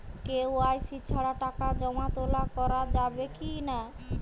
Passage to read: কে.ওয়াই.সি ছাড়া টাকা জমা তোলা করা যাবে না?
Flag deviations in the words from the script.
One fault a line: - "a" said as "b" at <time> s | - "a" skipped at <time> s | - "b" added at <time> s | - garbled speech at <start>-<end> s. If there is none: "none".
- "কি" added at 3.4 s